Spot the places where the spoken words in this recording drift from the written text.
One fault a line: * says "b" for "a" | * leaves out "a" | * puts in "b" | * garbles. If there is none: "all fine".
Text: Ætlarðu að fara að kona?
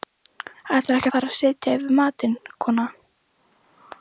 * puts in "ekki"
* puts in "setja yfir matinn"